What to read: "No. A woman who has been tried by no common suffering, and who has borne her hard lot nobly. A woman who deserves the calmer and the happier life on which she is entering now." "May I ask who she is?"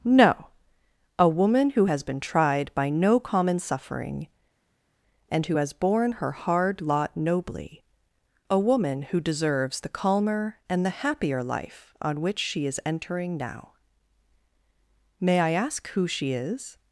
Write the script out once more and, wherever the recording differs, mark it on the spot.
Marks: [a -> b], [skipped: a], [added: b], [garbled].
"No. A woman who has been tried by no common suffering, and who has borne her hard lot nobly. A woman who deserves the calmer and the happier life on which she is entering now." "May I ask who she is?"